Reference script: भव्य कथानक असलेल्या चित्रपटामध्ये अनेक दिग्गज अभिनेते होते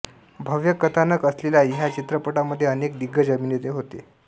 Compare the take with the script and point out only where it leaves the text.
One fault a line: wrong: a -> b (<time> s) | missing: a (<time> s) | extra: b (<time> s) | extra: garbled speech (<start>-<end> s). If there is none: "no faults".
extra: ह्या (1.6 s)